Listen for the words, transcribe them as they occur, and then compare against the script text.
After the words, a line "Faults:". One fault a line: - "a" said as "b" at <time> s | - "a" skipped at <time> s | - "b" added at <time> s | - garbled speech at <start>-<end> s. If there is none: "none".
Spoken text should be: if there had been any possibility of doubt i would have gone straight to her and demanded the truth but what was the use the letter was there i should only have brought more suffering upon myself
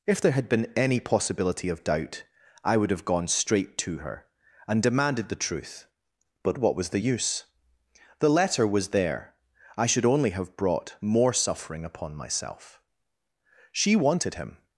if there had been any possibility of doubt i would have gone straight to her and demanded the truth but what was the use the letter was there i should only have brought more suffering upon myself she wanted him
Faults:
- "she wanted him" added at 13.7 s